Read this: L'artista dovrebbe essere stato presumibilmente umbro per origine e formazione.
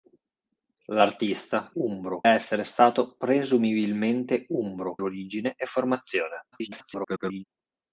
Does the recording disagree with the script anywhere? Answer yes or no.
yes